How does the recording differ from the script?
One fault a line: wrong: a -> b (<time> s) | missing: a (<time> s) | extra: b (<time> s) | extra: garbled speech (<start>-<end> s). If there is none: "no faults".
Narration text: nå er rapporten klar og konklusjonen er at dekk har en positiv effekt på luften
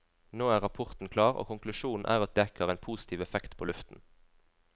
no faults